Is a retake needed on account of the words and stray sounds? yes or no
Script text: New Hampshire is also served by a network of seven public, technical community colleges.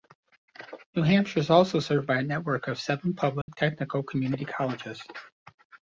yes